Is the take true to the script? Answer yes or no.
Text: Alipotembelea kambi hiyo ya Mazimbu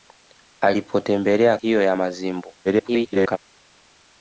no